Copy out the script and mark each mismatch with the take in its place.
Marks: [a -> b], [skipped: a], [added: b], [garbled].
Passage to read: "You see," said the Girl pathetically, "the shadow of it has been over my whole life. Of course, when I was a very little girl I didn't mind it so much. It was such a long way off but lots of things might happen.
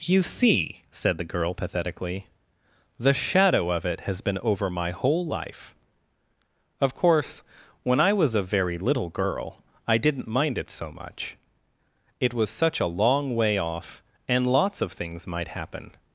"You see," said the Girl pathetically, "the shadow of it has been over my whole life. Of course, when I was a very little girl I didn't mind it so much. It was such a long way off [but -> and] lots of things might happen.